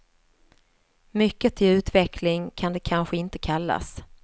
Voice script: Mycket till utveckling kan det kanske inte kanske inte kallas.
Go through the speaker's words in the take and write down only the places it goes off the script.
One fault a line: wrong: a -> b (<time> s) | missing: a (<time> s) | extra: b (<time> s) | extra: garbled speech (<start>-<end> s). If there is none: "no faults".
missing: kanske inte (3.4 s)